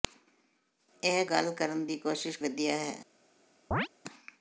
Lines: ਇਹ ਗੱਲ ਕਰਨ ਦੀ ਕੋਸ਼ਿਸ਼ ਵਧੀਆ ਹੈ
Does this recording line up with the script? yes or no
yes